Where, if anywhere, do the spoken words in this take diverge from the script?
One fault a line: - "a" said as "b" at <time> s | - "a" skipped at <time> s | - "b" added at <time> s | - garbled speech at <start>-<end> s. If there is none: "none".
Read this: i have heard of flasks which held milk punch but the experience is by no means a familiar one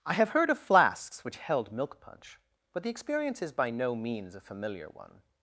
none